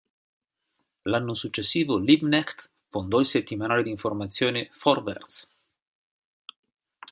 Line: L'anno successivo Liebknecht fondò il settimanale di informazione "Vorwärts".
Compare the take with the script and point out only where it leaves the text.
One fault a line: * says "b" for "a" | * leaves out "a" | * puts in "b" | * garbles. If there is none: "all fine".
all fine